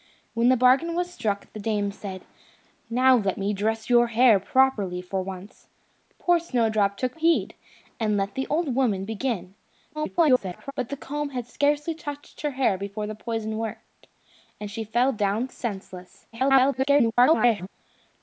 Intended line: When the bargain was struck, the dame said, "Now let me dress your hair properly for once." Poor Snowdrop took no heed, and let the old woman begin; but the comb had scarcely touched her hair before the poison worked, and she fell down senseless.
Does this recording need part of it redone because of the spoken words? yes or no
yes